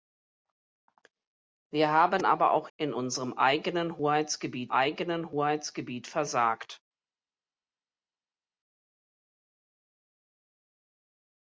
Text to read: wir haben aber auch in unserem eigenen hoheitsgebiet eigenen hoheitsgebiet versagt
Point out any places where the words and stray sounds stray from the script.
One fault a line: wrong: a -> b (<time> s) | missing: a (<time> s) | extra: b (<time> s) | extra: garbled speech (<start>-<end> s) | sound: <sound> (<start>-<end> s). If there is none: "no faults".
no faults